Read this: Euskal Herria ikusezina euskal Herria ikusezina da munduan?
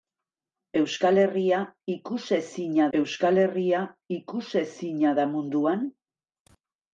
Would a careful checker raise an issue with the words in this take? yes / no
no